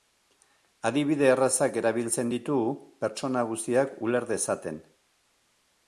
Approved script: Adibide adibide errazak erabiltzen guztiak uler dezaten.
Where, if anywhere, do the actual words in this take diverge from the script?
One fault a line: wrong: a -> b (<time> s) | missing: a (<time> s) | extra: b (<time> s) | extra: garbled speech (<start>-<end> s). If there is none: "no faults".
missing: adibide (1.3 s)
extra: ditu pertsona (2.3 s)